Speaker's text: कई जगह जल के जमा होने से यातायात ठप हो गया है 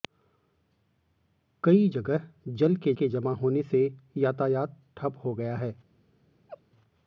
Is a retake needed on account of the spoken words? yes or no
yes